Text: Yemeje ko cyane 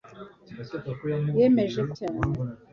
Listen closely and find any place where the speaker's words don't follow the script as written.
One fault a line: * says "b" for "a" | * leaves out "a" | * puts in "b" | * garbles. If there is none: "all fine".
all fine